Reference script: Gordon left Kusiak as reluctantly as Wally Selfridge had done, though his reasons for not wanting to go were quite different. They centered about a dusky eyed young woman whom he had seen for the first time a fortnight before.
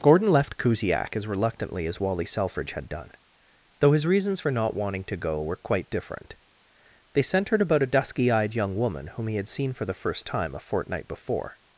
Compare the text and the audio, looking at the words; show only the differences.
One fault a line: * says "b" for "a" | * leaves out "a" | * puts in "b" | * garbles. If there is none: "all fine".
all fine